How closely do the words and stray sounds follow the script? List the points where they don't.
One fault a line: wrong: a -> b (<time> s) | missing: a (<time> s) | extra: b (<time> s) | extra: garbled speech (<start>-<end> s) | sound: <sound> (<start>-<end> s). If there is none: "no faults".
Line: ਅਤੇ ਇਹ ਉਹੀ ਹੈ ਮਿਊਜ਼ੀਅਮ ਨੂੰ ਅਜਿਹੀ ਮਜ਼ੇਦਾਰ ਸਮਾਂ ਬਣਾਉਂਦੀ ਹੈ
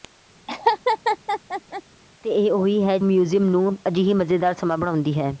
sound: laugh (0.5-1.8 s)